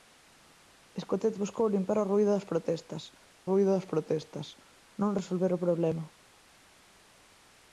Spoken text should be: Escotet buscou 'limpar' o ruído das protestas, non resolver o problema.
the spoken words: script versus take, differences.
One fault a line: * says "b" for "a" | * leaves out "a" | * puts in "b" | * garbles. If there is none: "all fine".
* puts in "ruído das protestas"